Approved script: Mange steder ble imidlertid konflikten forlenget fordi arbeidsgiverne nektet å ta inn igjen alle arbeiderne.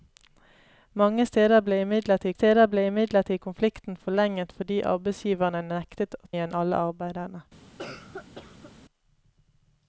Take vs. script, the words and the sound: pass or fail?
fail